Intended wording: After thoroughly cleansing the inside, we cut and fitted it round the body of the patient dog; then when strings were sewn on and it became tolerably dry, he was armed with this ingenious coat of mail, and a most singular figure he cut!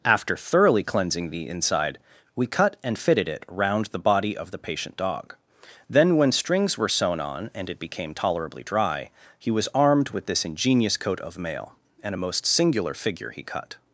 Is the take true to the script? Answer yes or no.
yes